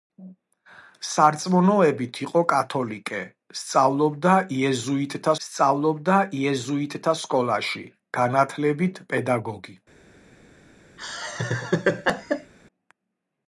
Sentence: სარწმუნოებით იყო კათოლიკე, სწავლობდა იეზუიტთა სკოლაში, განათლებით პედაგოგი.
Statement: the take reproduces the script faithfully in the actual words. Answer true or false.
false